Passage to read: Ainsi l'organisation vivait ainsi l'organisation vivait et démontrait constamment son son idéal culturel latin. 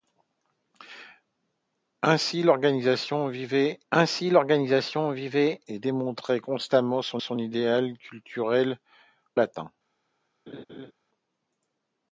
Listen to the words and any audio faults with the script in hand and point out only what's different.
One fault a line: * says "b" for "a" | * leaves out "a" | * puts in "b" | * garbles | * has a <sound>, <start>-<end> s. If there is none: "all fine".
* has a laugh, 10.5-10.9 s